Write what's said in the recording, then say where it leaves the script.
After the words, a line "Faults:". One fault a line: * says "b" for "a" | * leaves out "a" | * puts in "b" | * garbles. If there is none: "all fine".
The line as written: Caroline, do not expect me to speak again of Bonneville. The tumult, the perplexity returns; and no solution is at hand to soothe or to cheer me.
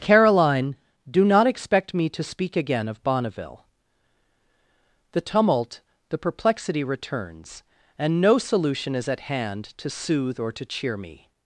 Caroline, do not expect me to speak again of Bonneville. The tumult, the perplexity returns; and no solution is at hand to soothe or to cheer me.
Faults:
all fine